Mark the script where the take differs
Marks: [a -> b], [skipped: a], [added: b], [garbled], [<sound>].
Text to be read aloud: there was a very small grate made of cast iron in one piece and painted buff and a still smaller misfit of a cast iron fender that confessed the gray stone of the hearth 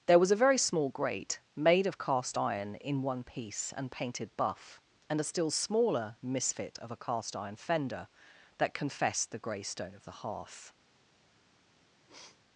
there was a very small grate made of cast iron in one piece and painted buff and a still smaller misfit of a cast iron fender that confessed the gray stone of the hearth [sniff]